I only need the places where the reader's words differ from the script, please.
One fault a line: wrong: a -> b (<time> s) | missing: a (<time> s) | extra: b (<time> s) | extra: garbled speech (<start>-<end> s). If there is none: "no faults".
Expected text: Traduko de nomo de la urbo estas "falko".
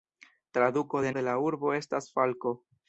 missing: nomo (1.1 s)